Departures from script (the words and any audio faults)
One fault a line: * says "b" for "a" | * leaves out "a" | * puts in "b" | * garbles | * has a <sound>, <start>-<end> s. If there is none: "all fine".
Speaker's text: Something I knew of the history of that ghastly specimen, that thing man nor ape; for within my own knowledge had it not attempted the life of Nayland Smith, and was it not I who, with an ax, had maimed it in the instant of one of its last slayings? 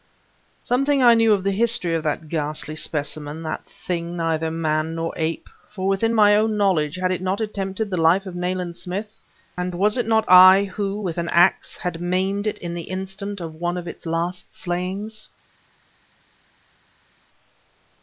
* puts in "neither"